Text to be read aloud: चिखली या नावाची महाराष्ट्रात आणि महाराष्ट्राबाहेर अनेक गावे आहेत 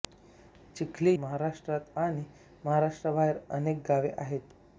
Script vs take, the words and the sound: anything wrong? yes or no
yes